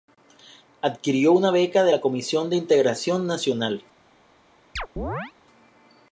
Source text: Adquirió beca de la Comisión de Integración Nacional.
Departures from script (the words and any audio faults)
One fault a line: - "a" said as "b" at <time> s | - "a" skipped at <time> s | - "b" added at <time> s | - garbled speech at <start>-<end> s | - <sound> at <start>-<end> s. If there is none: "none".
- "una" added at 1.3 s
- chirp at 4.8-5.3 s